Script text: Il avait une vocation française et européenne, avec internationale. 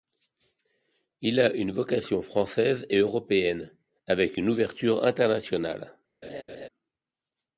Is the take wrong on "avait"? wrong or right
wrong